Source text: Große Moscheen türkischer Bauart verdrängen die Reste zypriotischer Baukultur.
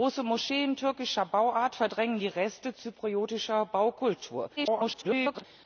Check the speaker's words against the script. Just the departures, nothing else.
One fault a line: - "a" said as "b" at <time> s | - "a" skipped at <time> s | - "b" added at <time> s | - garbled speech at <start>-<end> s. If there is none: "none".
- garbled speech at 4.6-5.4 s